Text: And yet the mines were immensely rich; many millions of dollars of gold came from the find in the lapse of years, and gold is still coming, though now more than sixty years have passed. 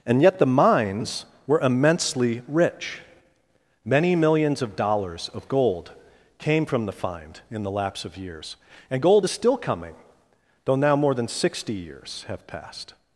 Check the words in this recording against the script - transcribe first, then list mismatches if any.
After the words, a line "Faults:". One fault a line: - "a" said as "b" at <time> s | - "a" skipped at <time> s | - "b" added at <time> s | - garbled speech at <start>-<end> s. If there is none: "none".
And yet the mines were immensely rich; many millions of dollars of gold came from the find in the lapse of years, and gold is still coming, though now more than sixty years have passed.
Faults:
none